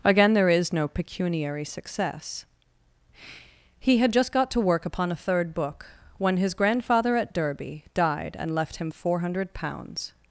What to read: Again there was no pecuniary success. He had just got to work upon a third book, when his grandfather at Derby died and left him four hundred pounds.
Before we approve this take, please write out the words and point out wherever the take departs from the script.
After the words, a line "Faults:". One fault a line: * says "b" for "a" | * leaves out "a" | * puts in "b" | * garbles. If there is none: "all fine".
Again there is no pecuniary success. He had just got to work upon a third book, when his grandfather at Derby died and left him four hundred pounds.
Faults:
* says "is" for "was"